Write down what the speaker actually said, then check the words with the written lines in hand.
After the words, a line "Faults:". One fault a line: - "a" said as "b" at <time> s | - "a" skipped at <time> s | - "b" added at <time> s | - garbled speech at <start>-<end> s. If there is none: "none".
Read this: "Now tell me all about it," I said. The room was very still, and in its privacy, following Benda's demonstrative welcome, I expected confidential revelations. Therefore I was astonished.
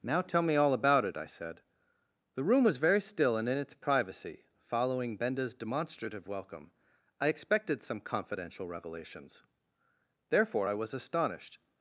"Now tell me all about it," I said. The room was very still, and in its privacy, following Benda's demonstrative welcome, I expected some confidential revelations. Therefore I was astonished.
Faults:
- "some" added at 7.8 s